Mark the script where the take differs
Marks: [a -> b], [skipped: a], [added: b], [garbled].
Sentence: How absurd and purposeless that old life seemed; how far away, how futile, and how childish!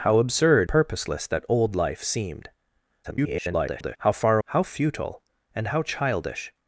How absurd [skipped: and] purposeless that old life seemed; [garbled] how far [skipped: away,] how futile, and how childish!